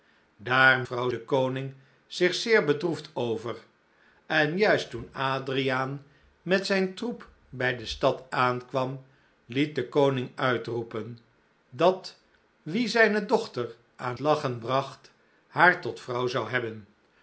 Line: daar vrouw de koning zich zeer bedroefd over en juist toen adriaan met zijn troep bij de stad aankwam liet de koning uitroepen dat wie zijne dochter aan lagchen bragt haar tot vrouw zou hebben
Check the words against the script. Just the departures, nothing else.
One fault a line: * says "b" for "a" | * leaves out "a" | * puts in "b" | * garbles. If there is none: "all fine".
all fine